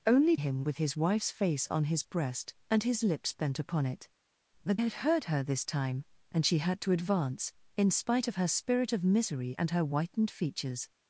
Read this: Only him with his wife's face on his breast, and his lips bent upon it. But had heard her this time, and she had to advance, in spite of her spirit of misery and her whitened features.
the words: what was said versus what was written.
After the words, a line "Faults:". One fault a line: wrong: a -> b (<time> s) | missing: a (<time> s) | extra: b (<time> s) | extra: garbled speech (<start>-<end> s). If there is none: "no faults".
Only him with his wife's face on his breast, and his lips bent upon it. But had heard her this time, and she had to advance, in spite of her spirit of misery and her whitened features.
Faults:
no faults